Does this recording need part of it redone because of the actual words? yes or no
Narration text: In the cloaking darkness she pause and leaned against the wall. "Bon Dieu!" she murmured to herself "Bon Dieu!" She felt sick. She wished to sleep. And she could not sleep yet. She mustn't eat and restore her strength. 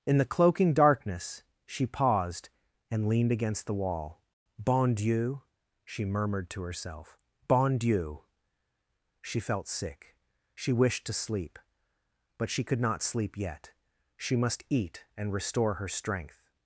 yes